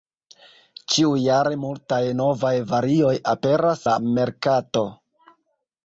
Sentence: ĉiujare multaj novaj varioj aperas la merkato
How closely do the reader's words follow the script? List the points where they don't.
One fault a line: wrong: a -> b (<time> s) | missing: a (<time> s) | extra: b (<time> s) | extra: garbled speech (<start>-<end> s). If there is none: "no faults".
no faults